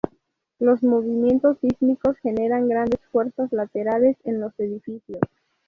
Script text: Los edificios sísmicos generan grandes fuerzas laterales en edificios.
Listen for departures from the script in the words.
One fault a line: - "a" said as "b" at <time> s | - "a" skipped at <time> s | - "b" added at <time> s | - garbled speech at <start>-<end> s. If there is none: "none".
- "edificios" said as "movimientos" at 0.8 s
- "los" added at 4.4 s